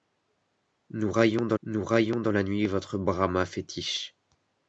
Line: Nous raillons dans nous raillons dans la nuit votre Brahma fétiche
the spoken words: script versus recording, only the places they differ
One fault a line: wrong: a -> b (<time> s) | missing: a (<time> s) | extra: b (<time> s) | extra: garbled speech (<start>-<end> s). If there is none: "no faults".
no faults